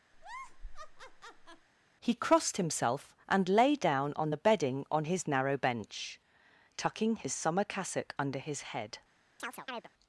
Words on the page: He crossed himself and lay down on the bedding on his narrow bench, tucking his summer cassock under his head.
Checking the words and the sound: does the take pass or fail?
fail